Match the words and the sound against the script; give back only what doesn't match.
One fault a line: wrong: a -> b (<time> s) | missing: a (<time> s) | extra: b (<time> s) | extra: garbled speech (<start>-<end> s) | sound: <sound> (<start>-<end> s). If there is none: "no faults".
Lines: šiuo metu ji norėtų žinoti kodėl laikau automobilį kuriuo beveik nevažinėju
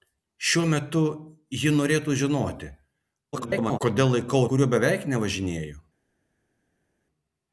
extra: garbled speech (3.3-3.8 s)
missing: automobilį (4.5 s)